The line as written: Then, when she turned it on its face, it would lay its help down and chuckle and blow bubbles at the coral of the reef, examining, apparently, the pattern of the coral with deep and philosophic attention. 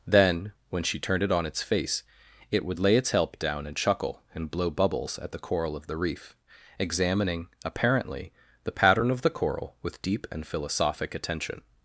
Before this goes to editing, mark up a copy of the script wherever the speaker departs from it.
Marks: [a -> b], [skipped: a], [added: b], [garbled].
Then, when she turned it on its face, it would lay its help down and chuckle and blow bubbles at the coral of the reef, examining, apparently, the pattern of the coral with deep and philosophic attention.